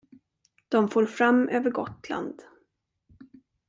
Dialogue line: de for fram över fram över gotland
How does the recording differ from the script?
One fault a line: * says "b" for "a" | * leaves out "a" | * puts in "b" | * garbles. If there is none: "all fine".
* leaves out "fram över"